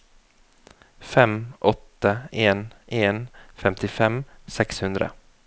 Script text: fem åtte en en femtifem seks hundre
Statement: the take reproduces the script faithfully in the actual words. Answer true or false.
true